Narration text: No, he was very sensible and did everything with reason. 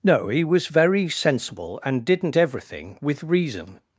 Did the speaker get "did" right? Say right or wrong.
wrong